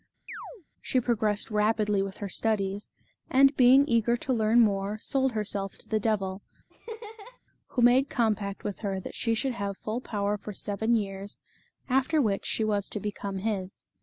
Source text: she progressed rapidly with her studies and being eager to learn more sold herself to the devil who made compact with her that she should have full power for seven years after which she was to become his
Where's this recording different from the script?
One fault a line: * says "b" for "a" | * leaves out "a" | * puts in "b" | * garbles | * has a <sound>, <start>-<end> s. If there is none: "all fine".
* has a chirp, 0.3-0.6 s
* has a laugh, 6.7-7.4 s